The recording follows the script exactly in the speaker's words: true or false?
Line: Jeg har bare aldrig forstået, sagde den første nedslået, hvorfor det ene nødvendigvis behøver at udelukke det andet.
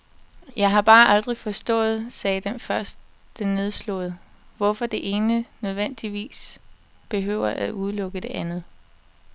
true